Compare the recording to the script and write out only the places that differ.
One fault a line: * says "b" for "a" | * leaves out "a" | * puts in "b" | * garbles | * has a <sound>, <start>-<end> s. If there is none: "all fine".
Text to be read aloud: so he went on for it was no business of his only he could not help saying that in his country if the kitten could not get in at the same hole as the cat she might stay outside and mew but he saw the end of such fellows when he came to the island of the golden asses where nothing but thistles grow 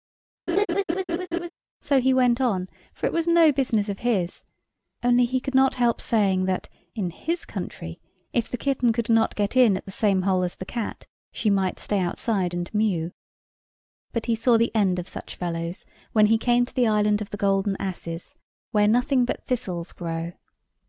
* has a laugh, 0.5-1.5 s